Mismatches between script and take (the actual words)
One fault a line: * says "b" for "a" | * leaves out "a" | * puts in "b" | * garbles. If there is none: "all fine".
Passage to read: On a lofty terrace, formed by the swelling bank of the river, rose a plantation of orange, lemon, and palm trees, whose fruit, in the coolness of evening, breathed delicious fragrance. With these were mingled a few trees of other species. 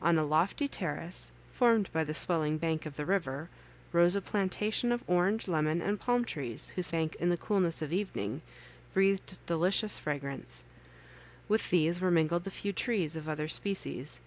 * says "bank" for "fruit"